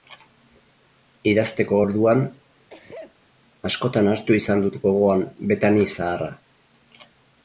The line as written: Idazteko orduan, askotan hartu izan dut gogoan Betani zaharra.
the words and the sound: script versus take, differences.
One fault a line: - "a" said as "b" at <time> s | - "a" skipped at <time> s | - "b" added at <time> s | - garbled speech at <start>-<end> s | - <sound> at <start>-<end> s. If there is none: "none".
- sneeze at 2.7-3.2 s